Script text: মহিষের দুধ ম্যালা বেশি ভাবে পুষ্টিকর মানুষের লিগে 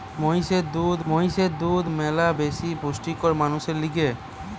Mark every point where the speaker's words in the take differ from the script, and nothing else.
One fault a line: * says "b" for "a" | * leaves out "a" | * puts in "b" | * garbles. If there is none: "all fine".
* puts in "মহিষের দুধ"
* leaves out "ভাবে"